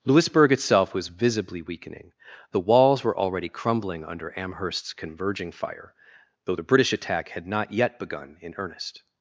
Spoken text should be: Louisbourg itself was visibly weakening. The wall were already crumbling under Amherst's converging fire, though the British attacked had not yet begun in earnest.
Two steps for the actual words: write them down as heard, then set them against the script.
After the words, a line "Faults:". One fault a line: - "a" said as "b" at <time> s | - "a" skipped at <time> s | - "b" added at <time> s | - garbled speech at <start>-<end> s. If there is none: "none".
Louisbourg itself was visibly weakening. The walls were already crumbling under Amherst's converging fire, though the British attack had not yet begun in earnest.
Faults:
- "wall" said as "walls" at 2.6 s
- "attacked" said as "attack" at 6.9 s